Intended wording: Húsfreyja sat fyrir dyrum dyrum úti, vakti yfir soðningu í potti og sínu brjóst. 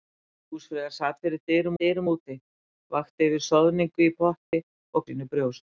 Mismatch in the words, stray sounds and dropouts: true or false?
true